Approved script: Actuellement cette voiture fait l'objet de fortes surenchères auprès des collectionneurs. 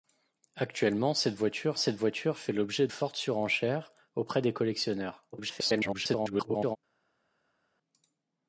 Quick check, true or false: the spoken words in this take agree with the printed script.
false